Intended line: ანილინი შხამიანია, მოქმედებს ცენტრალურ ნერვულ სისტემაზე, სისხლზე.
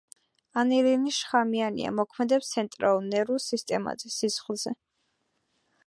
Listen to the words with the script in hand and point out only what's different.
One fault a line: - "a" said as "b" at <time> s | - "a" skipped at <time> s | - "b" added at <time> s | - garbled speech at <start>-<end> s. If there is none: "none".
none